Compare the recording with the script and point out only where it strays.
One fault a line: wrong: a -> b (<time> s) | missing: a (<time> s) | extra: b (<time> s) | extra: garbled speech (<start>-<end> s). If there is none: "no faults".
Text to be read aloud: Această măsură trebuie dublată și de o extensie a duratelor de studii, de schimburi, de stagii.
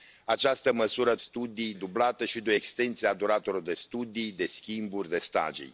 wrong: trebuie -> studii (1.2 s)